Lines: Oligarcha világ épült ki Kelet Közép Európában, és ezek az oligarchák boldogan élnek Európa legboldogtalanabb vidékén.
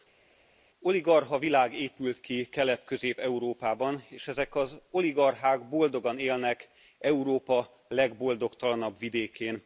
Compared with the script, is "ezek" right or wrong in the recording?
right